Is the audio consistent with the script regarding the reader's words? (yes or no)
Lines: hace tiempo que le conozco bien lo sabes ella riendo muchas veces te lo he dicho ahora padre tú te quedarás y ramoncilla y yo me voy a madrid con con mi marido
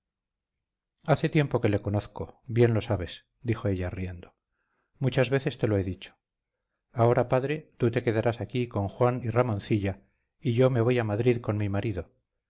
no